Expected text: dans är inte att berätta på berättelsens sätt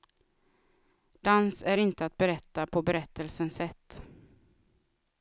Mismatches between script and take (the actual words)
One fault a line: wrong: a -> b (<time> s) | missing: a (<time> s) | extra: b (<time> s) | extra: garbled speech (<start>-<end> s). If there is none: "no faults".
no faults